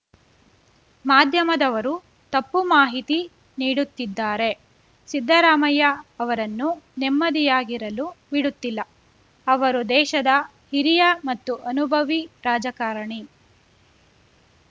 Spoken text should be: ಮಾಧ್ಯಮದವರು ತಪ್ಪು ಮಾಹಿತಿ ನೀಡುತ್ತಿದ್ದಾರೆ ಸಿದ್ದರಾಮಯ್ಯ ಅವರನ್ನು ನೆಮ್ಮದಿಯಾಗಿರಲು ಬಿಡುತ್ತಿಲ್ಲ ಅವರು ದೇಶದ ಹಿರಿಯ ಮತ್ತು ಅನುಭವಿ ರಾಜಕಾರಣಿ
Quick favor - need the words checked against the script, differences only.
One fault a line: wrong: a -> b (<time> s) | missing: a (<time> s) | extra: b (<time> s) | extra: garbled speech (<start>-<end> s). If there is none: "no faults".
no faults